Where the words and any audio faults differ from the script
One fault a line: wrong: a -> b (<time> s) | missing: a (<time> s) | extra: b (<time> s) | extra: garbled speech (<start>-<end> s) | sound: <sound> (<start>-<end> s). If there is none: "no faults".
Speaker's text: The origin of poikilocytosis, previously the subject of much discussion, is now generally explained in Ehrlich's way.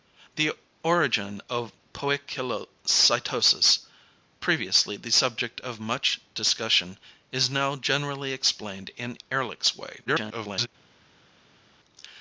extra: garbled speech (10.1-10.7 s)